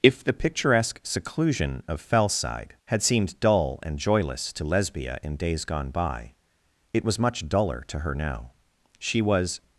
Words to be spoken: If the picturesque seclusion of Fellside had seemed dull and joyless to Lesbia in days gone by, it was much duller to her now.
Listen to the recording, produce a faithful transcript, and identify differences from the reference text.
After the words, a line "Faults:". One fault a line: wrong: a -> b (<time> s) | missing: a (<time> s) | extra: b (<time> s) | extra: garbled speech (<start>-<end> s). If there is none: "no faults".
If the picturesque seclusion of Fellside had seemed dull and joyless to Lesbia in days gone by, it was much duller to her now. She was
Faults:
extra: She was (9.0 s)